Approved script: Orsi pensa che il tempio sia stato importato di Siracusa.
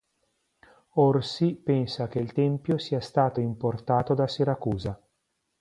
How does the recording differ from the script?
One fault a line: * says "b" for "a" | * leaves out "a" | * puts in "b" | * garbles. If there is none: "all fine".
* says "da" for "di"